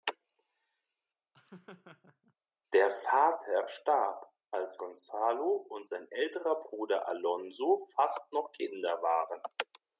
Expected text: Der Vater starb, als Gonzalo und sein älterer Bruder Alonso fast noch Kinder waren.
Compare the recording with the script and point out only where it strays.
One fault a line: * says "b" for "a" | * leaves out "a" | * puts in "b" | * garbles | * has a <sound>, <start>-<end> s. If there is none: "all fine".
* has a laugh, 1.3-2.3 s